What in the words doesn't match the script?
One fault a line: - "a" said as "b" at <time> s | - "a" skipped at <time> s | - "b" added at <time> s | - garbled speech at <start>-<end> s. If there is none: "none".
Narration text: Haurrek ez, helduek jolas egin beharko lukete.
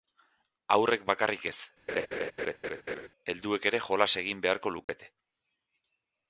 - "bakarrik" added at 1.1 s
- "ere" added at 3.7 s